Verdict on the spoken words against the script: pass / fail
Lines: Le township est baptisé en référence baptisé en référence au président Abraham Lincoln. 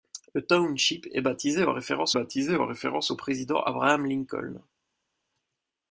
pass